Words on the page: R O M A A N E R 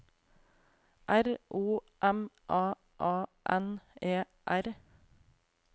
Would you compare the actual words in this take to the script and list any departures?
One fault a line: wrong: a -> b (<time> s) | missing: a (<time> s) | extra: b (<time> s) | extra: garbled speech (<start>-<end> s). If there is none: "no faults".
no faults